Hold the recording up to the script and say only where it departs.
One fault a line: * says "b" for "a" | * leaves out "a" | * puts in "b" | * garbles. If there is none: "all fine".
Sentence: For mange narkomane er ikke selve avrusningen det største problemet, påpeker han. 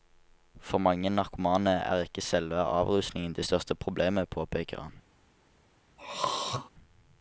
all fine